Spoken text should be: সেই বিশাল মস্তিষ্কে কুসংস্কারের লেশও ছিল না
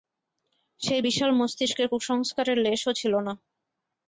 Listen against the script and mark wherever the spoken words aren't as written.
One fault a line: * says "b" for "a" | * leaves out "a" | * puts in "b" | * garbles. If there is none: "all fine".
all fine